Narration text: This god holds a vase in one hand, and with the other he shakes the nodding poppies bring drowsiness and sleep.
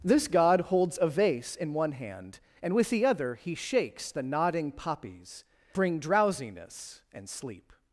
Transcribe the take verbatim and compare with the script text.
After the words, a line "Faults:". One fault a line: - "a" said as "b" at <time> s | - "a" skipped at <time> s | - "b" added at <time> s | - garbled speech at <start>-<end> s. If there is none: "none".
This god holds a vase in one hand, and with the other he shakes the nodding poppies bring drowsiness and sleep.
Faults:
none